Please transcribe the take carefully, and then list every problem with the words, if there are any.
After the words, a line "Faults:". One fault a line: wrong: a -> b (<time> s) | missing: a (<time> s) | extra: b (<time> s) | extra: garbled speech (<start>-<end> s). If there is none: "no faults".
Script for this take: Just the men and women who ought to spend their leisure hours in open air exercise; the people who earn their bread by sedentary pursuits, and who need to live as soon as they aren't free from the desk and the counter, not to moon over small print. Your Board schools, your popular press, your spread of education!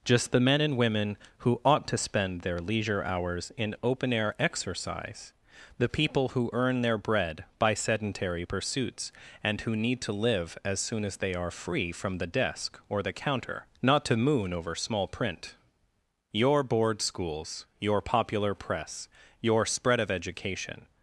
Just the men and women who ought to spend their leisure hours in open air exercise; the people who earn their bread by sedentary pursuits, and who need to live as soon as they are free from the desk or the counter, not to moon over small print. Your Board schools, your popular press, your spread of education!
Faults:
wrong: aren't -> are (11.3 s)
wrong: and -> or (12.9 s)